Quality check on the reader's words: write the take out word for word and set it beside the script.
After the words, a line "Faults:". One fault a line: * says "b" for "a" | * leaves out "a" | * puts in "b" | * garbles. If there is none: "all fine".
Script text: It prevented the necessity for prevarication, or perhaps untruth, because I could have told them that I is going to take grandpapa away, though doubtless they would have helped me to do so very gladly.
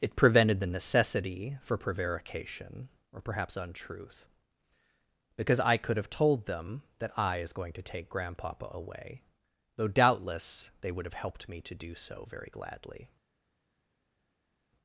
It prevented the necessity for prevarication, or perhaps untruth, because I could have told them that I is going to take grandpapa away, though doubtless they would have helped me to do so very gladly.
Faults:
all fine